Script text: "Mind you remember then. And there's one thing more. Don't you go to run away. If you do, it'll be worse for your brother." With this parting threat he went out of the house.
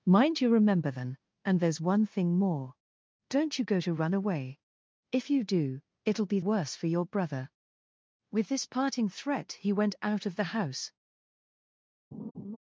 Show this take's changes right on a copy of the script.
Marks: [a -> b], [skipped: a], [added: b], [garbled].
"Mind you remember then. And there's one thing more. Don't you go to run away. If you do, it'll be worse for your brother." With this parting threat he went out of the house.